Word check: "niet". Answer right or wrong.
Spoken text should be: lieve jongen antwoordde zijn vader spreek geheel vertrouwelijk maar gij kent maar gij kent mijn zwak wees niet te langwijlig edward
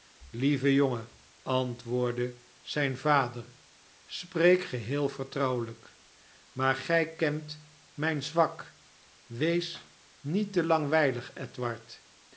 right